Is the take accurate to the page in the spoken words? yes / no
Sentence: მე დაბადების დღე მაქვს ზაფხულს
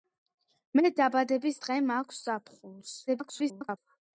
no